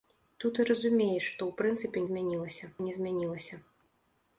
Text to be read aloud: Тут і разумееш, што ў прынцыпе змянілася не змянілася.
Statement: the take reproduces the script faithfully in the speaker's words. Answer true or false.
true